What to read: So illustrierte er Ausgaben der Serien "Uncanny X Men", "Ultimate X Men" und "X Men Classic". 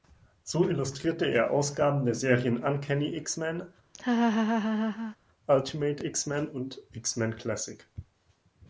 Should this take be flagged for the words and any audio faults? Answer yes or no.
yes